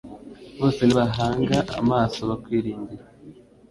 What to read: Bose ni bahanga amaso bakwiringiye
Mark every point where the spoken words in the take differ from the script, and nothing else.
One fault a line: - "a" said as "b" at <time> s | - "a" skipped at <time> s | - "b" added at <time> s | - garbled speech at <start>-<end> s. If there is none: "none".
none